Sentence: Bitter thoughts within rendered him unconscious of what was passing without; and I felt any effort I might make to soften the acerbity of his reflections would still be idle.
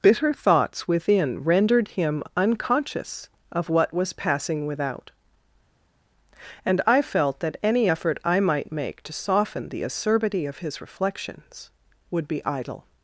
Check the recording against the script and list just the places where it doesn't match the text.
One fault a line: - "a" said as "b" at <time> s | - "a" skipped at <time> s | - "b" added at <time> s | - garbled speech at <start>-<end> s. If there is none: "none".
- "that" added at 7.4 s
- "still" skipped at 12.3 s